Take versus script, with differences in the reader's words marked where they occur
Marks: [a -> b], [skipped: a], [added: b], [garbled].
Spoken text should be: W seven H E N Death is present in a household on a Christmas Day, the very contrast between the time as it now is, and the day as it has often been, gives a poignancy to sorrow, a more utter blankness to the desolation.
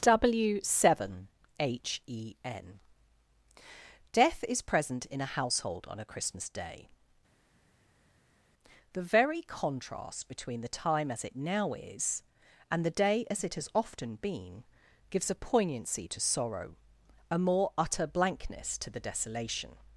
W seven H E N Death is present in a household on a Christmas Day, the very contrast between the time as it now is, and the day as it has often been, gives a poignancy to sorrow, a more utter blankness to the desolation.